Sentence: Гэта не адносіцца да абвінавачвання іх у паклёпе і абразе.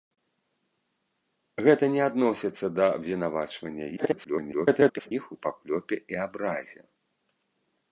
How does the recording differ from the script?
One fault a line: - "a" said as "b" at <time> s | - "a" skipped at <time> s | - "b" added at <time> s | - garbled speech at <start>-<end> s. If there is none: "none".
- garbled speech at 4.0-5.1 s